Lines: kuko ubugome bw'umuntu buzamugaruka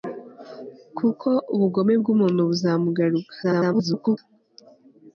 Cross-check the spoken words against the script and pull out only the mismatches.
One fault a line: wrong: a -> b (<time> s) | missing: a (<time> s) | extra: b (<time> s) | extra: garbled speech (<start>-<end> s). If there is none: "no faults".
extra: garbled speech (3.4-4.2 s)